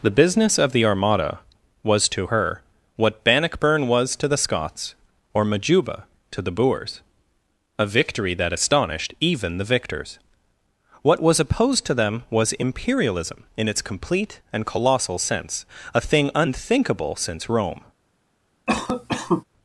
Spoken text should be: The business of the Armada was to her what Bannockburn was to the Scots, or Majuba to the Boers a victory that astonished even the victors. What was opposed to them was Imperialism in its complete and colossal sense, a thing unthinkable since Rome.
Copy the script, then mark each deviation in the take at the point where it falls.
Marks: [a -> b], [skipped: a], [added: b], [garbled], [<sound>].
The business of the Armada was to her what Bannockburn was to the Scots, or Majuba to the Boers a victory that astonished even the victors. What was opposed to them was Imperialism in its complete and colossal sense, a thing unthinkable since Rome. [cough]